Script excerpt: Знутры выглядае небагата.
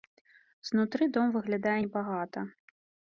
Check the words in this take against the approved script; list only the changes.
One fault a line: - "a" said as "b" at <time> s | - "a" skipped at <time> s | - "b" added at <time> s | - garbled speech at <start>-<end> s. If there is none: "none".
- "дом" added at 1.2 s